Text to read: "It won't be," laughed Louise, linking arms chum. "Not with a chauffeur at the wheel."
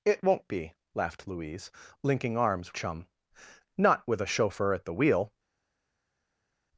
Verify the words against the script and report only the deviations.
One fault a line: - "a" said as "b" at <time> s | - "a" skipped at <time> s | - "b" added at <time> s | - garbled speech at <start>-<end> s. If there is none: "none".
none